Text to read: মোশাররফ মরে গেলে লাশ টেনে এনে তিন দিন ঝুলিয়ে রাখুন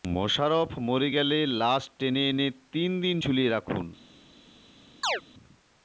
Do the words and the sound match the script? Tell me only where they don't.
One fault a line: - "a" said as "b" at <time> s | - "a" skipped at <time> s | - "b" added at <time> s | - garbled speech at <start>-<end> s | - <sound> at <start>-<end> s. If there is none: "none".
- chirp at 5.0-5.2 s